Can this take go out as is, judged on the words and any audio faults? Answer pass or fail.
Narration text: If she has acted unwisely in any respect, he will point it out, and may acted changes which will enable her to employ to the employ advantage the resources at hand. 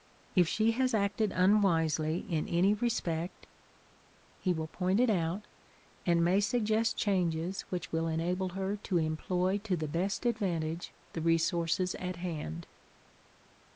fail